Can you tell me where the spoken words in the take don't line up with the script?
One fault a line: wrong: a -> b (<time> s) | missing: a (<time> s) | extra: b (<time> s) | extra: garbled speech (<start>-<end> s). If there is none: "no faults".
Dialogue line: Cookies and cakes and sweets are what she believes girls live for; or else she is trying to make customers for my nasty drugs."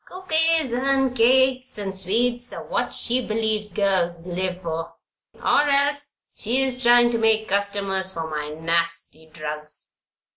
no faults